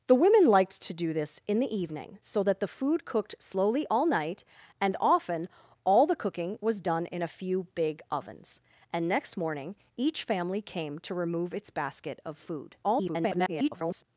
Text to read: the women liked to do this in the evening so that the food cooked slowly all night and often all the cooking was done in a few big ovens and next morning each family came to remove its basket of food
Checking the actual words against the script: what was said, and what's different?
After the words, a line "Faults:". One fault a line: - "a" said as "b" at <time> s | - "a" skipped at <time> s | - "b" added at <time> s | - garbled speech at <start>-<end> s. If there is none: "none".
the women liked to do this in the evening so that the food cooked slowly all night and often all the cooking was done in a few big ovens and next morning each family came to remove its basket of food [garbled]
Faults:
- garbled speech at 12.8-14.0 s